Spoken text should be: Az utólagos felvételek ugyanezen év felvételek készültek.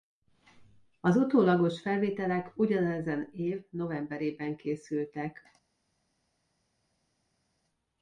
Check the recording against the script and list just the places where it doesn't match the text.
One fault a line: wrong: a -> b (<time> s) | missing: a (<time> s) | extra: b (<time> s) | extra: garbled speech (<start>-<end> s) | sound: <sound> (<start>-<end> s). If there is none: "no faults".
wrong: felvételek -> novemberében (3.7 s)